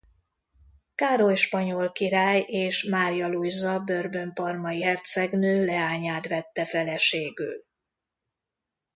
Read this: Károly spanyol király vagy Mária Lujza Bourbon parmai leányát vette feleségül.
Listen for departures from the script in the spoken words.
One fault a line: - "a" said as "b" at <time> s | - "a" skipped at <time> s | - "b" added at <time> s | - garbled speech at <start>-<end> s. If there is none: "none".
- "vagy" said as "és" at 2.4 s
- "hercegnő" added at 4.8 s